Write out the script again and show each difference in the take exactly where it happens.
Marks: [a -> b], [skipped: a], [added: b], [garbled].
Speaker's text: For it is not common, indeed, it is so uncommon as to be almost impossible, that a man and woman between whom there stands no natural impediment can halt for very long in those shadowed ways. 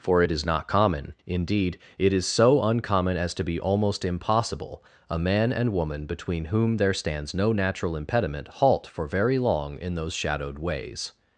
For it is not common, indeed, it is so uncommon as to be almost impossible, [skipped: that] a man and woman between whom there stands no natural impediment [skipped: can] halt for very long in those shadowed ways.